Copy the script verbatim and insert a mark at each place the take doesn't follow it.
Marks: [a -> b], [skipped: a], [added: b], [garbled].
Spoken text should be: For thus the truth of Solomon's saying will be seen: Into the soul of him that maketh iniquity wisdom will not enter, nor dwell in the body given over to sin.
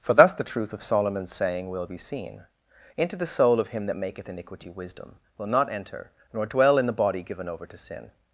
For thus the truth of Solomon's saying will be seen: Into the soul of him that maketh iniquity wisdom will not enter, nor dwell in the body given over to sin.